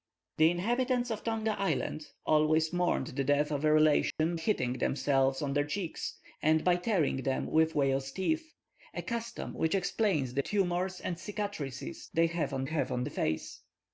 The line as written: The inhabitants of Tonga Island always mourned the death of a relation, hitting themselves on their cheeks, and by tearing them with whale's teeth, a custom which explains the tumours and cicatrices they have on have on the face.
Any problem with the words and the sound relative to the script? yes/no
yes